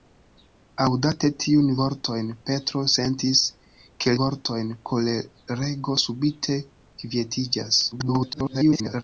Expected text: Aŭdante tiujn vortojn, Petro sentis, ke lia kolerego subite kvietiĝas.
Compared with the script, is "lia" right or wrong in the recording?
wrong